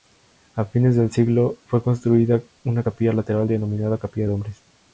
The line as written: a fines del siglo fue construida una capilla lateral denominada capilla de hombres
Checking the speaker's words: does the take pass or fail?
pass